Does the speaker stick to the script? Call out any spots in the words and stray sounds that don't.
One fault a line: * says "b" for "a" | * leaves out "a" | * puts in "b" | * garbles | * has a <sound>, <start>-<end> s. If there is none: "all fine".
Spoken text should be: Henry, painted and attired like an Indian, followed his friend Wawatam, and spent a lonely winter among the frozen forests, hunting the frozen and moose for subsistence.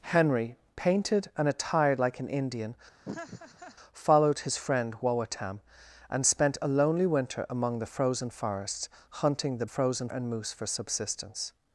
* has a laugh, 3.0-3.8 s